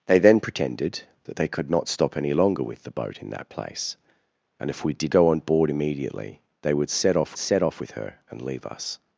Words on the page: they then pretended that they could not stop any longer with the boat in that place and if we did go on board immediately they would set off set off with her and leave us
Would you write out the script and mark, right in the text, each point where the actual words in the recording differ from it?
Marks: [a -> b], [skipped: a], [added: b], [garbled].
they then pretended that they could not stop any longer with the boat in that place and if we did go on board immediately they would set off set off with her and leave us